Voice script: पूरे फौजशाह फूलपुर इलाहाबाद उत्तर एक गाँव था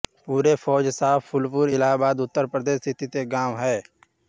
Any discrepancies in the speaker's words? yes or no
yes